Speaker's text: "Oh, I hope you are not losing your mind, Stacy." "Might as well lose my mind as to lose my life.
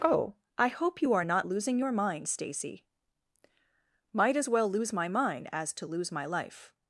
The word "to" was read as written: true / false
true